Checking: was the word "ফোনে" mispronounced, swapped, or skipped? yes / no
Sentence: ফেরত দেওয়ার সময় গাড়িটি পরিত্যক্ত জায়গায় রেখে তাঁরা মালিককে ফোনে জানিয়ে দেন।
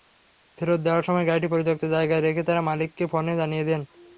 no